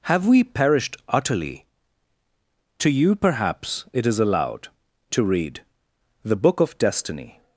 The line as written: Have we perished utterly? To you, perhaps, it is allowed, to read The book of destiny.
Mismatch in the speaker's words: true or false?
false